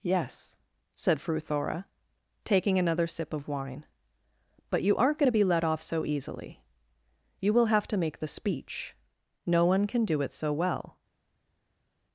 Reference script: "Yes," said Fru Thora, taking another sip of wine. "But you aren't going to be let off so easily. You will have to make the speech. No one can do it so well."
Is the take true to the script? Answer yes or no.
yes